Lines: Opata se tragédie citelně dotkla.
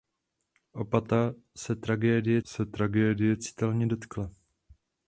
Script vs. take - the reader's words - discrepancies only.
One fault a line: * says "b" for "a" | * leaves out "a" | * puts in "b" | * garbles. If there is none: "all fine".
* puts in "se tragédie"